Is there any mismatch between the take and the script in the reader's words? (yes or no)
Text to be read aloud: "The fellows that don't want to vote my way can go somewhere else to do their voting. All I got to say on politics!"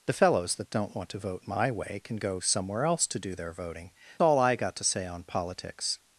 no